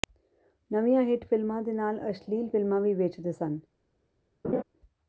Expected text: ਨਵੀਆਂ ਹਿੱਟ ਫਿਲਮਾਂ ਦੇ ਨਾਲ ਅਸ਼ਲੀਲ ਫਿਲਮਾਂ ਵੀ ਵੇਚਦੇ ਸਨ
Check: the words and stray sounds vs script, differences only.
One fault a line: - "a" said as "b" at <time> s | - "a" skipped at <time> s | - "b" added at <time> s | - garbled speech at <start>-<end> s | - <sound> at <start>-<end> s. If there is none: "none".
- laugh at 4.4-4.6 s